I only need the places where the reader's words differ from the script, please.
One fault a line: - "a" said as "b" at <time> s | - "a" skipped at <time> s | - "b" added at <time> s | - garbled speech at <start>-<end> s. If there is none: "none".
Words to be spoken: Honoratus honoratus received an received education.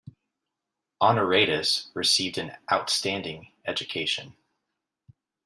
- "honoratus" skipped at 1.9 s
- "received" said as "outstanding" at 2.7 s